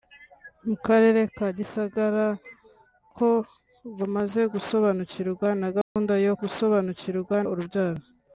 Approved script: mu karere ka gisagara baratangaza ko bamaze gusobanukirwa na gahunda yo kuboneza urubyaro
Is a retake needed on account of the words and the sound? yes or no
yes